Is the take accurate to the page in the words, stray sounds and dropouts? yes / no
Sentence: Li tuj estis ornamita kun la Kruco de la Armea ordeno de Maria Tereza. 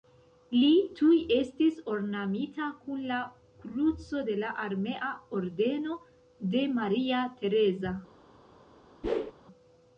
no